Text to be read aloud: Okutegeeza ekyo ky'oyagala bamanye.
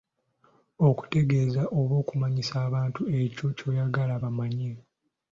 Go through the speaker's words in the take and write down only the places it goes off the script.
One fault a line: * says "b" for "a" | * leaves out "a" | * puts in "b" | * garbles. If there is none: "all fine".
* puts in "oba okumanyisa abantu"